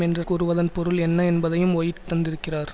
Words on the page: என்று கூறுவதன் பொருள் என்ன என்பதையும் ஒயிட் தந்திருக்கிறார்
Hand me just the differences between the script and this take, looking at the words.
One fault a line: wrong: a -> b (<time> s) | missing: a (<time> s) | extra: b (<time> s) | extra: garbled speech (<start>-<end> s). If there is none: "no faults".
no faults